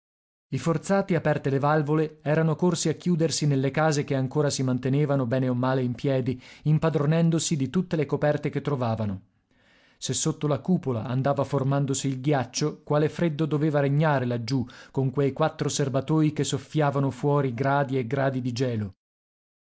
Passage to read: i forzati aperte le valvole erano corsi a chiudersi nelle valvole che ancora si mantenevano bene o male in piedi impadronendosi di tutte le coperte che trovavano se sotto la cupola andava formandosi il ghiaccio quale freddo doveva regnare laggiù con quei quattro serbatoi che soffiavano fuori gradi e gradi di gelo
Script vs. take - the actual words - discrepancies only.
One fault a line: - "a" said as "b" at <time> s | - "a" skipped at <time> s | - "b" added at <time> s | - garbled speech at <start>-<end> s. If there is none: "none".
- "valvole" said as "case" at 3.7 s